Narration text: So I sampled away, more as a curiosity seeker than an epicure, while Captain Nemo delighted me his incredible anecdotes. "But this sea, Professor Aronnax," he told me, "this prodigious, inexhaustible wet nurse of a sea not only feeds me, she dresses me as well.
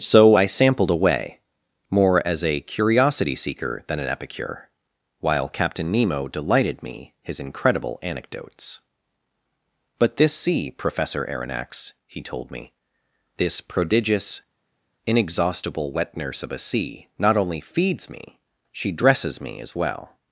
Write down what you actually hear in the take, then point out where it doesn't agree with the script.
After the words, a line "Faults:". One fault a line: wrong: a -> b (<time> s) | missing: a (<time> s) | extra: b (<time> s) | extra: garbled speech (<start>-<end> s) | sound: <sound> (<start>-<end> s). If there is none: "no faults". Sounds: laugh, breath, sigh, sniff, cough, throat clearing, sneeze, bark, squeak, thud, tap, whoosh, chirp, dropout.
So I sampled away, more as a curiosity seeker than an epicure, while Captain Nemo delighted me his incredible anecdotes. "But this sea, Professor Aronnax," he told me, "this prodigious, inexhaustible wet nurse of a sea not only feeds me, she dresses me as well.
Faults:
no faults